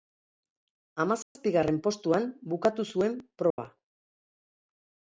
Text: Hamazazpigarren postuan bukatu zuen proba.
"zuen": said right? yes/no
yes